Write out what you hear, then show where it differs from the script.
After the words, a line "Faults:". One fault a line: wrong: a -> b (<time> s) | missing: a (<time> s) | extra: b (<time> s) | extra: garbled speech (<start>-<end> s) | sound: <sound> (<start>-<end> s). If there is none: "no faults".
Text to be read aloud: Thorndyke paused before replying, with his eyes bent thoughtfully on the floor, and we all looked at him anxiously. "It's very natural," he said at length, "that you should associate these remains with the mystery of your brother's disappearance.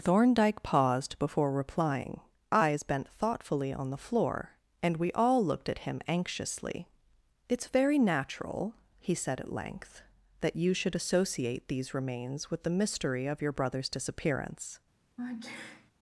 Thorndyke paused before replying, eyes bent thoughtfully on the floor, and we all looked at him anxiously. "It's very natural," he said at length, "that you should associate these remains with the mystery of your brother's disappearance.
Faults:
missing: with his (2.2 s)
sound: sneeze (15.2-15.9 s)